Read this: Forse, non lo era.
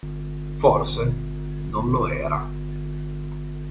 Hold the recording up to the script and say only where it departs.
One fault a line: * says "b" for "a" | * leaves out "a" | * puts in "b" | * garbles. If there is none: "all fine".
all fine